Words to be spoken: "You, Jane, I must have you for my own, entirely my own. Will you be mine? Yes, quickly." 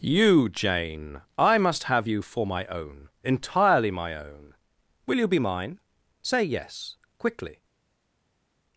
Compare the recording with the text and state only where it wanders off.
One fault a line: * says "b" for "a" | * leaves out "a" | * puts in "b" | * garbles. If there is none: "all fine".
* puts in "Say"